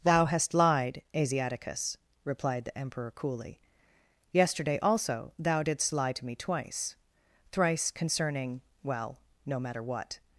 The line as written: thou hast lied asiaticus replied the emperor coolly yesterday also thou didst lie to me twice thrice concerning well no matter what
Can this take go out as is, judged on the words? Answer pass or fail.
pass